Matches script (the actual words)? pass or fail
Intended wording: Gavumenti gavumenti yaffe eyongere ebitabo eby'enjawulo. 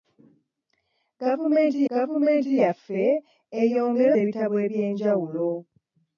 pass